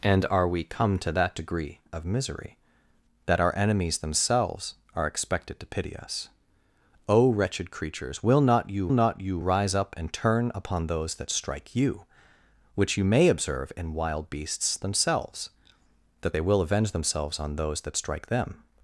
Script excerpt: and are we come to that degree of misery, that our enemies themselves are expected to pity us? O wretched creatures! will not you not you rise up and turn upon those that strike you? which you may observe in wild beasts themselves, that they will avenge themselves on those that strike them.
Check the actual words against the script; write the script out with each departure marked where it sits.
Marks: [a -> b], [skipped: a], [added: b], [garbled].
and are we come to that degree of misery, that our enemies themselves are expected to pity us? O wretched creatures! will not you not you rise up and turn upon those that strike you? which you may observe in wild beasts themselves, that they will avenge themselves on those that strike them.